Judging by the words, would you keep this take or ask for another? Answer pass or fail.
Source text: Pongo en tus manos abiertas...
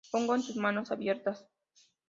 pass